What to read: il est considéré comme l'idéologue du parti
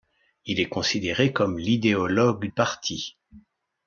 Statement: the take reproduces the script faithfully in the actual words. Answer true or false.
false